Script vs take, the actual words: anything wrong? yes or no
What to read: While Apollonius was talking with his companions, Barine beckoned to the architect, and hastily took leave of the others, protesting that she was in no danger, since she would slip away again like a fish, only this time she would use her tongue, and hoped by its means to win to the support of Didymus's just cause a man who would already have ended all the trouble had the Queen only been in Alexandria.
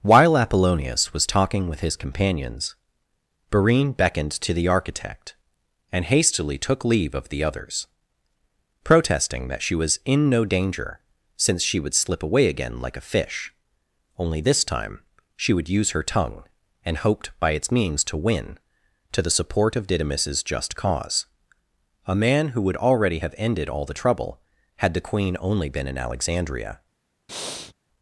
no